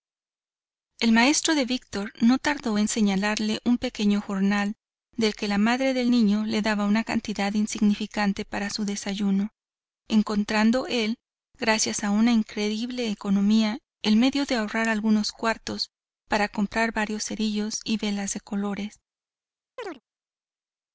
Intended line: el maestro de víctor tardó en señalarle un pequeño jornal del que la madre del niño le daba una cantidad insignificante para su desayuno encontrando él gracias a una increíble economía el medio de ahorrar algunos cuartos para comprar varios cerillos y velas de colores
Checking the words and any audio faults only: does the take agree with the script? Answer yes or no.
no